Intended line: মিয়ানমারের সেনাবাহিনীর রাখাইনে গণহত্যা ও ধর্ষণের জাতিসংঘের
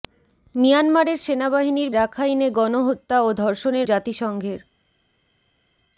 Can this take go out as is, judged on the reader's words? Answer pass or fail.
pass